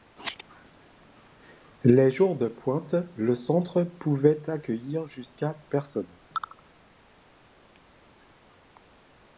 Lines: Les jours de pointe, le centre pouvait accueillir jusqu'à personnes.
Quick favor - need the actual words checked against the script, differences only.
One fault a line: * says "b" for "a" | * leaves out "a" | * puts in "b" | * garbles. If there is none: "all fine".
all fine